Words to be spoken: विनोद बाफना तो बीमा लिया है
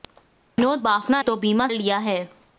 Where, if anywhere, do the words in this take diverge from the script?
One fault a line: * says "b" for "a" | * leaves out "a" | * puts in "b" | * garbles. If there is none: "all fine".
all fine